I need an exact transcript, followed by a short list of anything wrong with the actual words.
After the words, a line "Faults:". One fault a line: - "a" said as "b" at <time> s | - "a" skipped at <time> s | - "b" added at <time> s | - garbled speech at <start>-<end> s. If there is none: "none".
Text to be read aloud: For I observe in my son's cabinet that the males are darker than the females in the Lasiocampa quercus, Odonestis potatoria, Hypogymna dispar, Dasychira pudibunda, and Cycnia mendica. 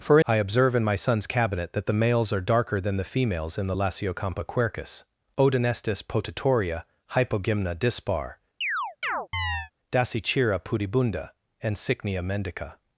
For I observe in my son's cabinet that the males are darker than the females in the Lasiocampa quercus, Odonestis potatoria, Hypogymna dispar, Dasychira pudibunda, and Cycnia mendica.
Faults:
none